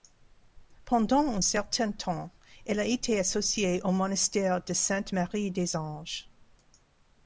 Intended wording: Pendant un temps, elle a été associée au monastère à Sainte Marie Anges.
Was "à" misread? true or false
true